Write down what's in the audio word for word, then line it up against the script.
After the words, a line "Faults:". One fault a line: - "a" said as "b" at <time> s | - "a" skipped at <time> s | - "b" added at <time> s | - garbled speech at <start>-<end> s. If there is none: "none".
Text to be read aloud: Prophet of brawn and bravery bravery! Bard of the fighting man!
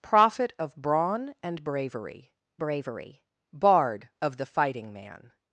Prophet of brawn and bravery bravery! Bard of the fighting man!
Faults:
none